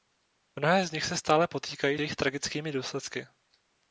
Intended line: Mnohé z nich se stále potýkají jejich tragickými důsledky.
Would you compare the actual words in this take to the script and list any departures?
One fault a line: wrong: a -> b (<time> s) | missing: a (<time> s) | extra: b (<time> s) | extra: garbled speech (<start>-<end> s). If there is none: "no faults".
no faults